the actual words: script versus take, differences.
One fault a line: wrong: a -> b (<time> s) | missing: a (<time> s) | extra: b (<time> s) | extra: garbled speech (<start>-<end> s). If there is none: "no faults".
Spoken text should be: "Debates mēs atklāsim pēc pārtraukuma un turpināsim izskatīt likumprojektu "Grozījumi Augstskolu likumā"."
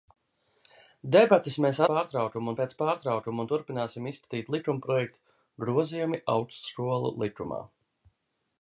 wrong: atklāsim -> pārtraukuma (1.9 s)